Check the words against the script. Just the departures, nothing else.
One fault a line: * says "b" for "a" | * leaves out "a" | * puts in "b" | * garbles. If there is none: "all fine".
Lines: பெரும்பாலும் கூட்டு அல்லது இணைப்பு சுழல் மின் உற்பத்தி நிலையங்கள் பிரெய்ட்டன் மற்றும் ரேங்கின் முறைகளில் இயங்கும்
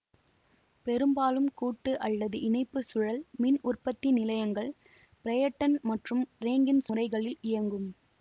all fine